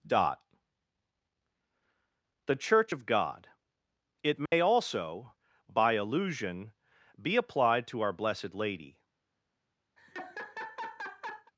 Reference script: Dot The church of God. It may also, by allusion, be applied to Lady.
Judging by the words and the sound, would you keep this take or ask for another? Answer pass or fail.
fail